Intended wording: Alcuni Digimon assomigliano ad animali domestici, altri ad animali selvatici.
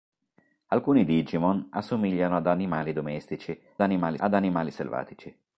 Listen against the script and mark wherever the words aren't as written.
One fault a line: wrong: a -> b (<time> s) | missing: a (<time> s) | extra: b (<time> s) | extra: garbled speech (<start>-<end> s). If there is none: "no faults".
wrong: altri -> animali (3.8 s)